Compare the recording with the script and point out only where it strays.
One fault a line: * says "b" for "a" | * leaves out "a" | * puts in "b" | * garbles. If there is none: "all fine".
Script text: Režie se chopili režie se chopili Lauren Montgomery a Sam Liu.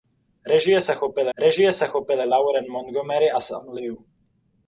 all fine